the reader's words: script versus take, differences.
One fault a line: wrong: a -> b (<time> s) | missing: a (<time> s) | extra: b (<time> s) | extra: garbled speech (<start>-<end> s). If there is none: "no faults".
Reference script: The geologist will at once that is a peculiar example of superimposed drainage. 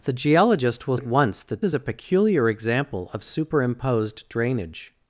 no faults